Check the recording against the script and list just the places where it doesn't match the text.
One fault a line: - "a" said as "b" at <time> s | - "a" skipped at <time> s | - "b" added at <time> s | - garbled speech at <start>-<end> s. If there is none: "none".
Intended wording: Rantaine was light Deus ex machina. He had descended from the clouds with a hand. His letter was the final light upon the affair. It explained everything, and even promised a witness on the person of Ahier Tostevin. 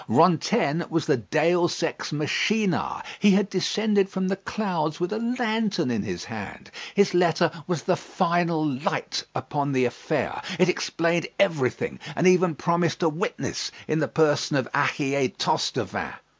- "light" said as "the" at 1.0 s
- "lantern in his" added at 5.2 s
- "on" said as "in" at 13.9 s